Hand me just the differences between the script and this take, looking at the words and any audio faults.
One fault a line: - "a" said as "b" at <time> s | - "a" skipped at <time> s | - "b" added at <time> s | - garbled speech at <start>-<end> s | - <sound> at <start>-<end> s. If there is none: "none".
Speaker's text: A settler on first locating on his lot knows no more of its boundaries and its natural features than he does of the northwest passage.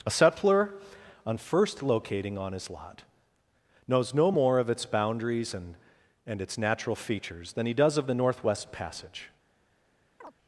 - "and" added at 6.2 s
- chirp at 10.2-10.3 s